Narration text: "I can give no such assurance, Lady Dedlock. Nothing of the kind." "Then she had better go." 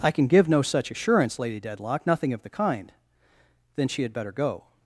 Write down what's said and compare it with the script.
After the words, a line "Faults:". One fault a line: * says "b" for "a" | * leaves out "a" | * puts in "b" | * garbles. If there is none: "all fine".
"I can give no such assurance, Lady Dedlock. Nothing of the kind." "Then she had better go."
Faults:
all fine